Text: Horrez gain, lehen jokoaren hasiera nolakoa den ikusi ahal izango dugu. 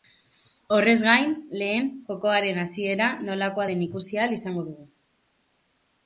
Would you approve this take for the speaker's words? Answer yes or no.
yes